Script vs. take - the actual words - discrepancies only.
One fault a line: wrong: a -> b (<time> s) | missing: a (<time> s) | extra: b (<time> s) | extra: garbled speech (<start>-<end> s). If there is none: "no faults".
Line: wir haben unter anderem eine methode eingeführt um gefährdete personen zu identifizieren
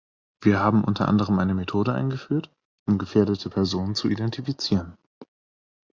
no faults